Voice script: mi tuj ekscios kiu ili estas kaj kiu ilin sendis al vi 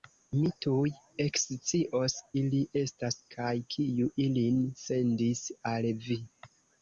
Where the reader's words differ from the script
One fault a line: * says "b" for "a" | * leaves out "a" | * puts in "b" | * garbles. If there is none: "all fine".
* leaves out "kiu"